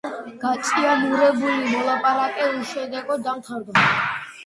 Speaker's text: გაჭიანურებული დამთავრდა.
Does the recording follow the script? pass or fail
fail